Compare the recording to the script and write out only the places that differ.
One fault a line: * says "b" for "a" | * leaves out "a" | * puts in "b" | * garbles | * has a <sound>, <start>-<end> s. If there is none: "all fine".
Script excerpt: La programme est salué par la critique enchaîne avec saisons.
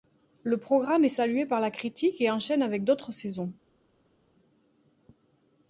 * says "Le" for "La"
* puts in "et"
* puts in "d'autres"